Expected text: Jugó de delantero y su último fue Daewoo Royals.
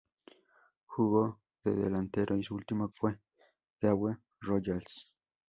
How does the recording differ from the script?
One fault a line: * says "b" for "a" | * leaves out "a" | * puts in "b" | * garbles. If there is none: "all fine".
all fine